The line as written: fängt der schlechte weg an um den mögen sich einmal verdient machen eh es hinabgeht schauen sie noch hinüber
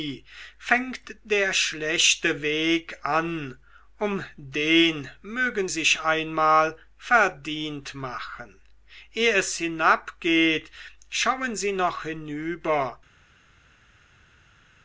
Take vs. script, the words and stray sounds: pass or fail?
pass